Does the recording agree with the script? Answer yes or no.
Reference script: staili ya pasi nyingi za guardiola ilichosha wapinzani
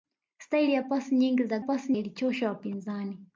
no